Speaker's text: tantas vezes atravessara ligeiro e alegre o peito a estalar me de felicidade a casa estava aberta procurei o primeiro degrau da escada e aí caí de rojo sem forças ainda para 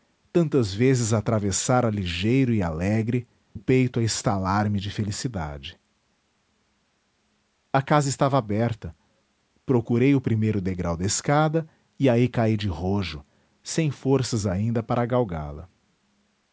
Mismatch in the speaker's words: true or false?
false